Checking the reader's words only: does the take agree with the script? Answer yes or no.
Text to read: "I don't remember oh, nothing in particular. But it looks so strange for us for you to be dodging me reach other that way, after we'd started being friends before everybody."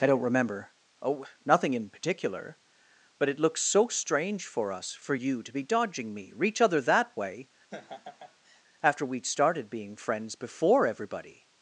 yes